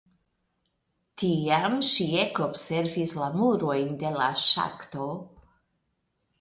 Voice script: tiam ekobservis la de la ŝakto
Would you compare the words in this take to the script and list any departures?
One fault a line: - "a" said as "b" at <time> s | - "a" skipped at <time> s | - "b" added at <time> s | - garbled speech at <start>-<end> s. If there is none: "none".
- "ŝi" added at 1.9 s
- "murojn" added at 3.4 s